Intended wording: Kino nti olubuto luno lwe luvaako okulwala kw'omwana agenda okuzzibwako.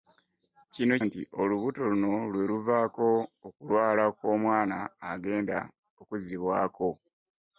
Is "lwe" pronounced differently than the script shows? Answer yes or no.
no